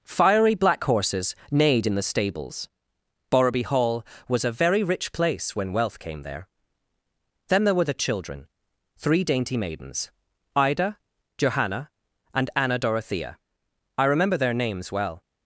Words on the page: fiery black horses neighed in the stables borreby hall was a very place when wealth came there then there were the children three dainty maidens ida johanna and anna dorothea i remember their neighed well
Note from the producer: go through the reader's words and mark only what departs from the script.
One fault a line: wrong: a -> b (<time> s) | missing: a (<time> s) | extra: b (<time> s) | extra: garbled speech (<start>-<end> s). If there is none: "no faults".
extra: rich (4.8 s)
wrong: neighed -> names (14.5 s)